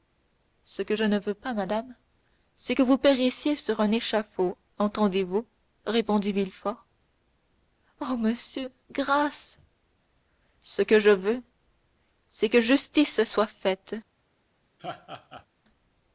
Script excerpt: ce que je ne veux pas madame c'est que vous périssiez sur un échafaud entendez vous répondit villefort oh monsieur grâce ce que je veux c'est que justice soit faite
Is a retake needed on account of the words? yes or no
no